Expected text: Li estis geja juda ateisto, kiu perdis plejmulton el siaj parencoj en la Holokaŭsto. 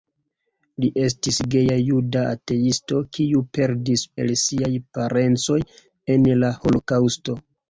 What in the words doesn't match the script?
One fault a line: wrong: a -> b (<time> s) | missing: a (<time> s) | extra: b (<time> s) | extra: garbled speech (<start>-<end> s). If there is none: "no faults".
missing: plejmulton (4.1 s)